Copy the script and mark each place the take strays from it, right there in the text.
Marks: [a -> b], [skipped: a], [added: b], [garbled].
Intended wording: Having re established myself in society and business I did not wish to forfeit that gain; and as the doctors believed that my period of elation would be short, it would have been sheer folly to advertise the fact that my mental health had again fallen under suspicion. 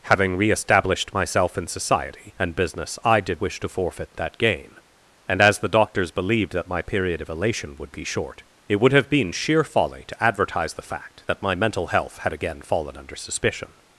Having re established myself in society and business I did [skipped: not] wish to forfeit that gain; and as the doctors believed that my period of elation would be short, it would have been sheer folly to advertise the fact that my mental health had again fallen under suspicion.